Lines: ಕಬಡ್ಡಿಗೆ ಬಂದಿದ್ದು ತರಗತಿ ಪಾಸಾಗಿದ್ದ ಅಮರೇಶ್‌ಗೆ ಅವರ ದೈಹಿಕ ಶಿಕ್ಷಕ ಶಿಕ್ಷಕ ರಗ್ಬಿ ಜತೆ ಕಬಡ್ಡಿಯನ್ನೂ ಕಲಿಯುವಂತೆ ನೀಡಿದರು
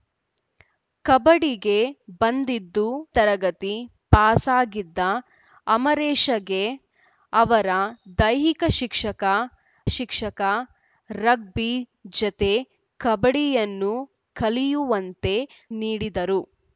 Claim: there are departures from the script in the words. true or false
false